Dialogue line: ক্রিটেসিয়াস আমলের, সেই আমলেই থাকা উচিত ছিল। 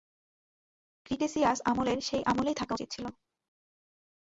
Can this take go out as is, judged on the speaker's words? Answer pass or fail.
pass